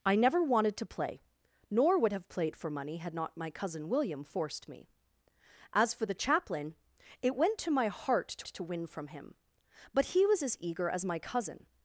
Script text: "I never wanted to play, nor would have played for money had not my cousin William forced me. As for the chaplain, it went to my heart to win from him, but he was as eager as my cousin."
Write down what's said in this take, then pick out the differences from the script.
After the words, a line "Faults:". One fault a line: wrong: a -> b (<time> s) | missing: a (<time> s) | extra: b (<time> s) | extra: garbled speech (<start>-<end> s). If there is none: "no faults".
"I never wanted to play, nor would have played for money had not my cousin William forced me. As for the chaplain, it went to my heart to to win from him, but he was as eager as my cousin."
Faults:
extra: to (8.5 s)